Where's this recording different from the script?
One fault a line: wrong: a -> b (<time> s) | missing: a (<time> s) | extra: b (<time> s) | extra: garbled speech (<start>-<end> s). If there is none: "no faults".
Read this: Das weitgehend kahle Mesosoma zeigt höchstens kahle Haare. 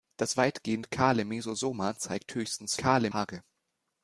no faults